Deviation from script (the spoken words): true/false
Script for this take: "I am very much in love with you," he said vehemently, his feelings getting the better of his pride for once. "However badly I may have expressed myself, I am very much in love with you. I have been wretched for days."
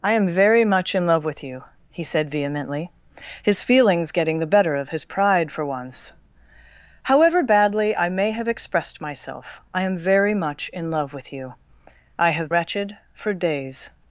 true